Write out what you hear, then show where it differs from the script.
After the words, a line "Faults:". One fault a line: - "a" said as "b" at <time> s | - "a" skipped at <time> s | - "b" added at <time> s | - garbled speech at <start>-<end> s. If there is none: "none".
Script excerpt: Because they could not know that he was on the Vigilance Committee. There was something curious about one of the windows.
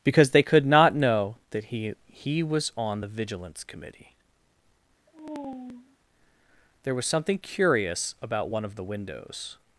Because they could not know that he he was on the Vigilance Committee. There was something curious about one of the windows.
Faults:
- "he" added at 2.1 s